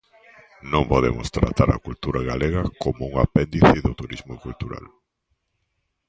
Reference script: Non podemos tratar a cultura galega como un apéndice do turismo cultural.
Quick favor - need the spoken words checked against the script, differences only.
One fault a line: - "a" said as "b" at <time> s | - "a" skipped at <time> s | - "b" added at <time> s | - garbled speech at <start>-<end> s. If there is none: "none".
none